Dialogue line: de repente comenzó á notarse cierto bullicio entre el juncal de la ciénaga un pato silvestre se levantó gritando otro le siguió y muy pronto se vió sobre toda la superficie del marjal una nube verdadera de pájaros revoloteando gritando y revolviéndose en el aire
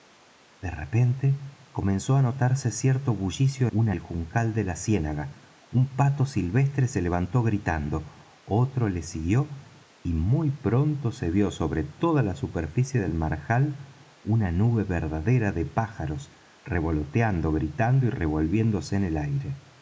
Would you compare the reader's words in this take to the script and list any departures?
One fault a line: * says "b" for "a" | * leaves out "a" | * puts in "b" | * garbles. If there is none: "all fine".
* says "una" for "entre"